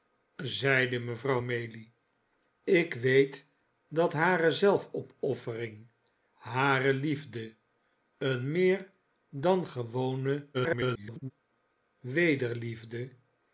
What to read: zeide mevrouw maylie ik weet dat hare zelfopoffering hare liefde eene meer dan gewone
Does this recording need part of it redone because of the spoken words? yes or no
yes